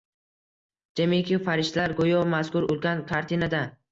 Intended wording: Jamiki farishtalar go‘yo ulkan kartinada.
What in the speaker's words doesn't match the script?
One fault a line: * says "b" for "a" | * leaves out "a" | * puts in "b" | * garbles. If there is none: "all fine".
* puts in "mazkur"